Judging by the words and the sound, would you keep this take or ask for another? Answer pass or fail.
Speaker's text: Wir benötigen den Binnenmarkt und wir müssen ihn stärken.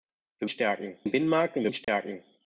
fail